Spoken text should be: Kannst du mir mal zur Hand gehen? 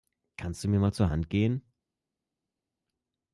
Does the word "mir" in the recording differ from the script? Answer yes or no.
no